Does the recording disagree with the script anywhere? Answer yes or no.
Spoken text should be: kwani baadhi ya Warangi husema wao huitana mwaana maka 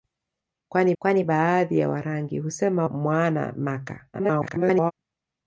yes